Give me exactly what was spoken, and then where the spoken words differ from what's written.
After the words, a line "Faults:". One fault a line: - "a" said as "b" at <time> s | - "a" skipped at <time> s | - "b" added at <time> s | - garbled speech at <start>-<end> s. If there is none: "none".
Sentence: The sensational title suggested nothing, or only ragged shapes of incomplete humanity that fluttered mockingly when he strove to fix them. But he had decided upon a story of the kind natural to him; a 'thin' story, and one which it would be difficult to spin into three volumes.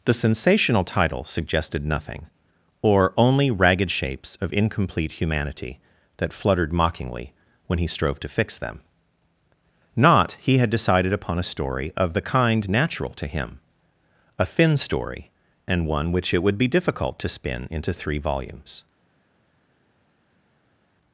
The sensational title suggested nothing, or only ragged shapes of incomplete humanity that fluttered mockingly when he strove to fix them. Not he had decided upon a story of the kind natural to him; a 'thin' story, and one which it would be difficult to spin into three volumes.
Faults:
- "But" said as "Not" at 9.9 s